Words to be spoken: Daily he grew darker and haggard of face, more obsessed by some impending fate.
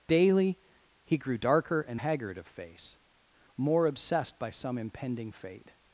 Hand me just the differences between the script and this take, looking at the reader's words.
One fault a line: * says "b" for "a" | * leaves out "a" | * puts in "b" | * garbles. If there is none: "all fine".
all fine